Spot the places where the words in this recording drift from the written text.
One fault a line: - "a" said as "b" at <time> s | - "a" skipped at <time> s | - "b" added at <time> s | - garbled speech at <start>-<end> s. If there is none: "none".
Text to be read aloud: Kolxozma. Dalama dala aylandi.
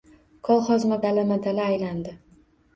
none